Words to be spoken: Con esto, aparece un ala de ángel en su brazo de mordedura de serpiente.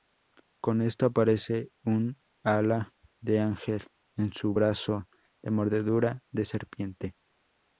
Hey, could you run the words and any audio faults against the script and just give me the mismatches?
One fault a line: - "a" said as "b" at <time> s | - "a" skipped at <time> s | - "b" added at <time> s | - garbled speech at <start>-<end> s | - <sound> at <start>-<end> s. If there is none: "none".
none